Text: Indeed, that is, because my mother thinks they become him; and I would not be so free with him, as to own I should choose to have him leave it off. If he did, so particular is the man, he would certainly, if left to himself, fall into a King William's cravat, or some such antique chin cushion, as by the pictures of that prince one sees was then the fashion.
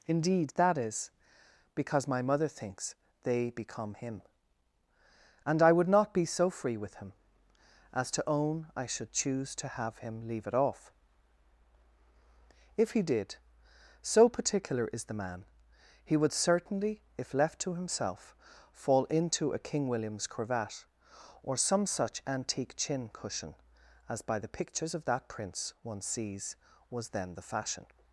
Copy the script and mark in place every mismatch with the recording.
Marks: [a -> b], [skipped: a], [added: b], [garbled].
Indeed, that is, because my mother thinks they become him; and I would not be so free with him, as to own I should choose to have him leave it off. If he did, so particular is the man, he would certainly, if left to himself, fall into a King William's cravat, or some such antique chin cushion, as by the pictures of that prince one sees was then the fashion.